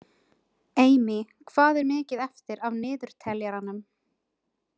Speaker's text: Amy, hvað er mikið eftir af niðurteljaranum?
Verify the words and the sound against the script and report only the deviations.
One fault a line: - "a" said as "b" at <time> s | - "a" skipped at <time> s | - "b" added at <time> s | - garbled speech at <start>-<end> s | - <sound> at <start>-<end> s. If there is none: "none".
none